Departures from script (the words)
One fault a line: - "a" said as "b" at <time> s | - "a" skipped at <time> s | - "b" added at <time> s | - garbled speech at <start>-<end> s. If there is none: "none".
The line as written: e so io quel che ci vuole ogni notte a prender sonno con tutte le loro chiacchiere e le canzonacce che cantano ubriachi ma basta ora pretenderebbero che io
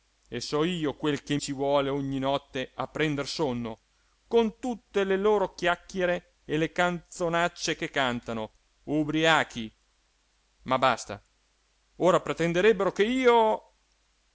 none